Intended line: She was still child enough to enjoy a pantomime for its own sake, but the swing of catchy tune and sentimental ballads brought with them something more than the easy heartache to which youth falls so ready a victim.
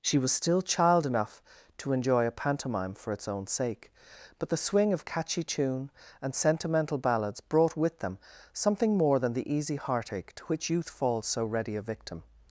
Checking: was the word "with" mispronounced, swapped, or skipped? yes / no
no